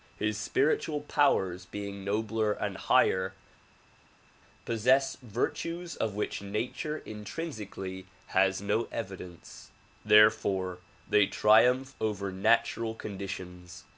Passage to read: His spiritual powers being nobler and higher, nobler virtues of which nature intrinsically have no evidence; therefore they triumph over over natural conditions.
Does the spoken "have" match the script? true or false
false